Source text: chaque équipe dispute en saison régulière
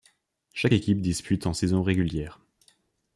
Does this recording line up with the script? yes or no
yes